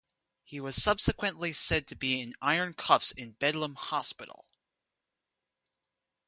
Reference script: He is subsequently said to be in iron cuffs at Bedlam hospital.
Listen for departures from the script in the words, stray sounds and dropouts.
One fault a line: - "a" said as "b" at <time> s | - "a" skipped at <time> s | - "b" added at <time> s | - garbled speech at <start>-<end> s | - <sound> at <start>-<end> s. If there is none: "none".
- "is" said as "was" at 0.6 s
- "at" said as "in" at 3.1 s